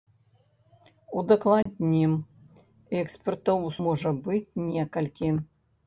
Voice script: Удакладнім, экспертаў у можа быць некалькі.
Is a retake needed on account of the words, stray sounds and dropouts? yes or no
yes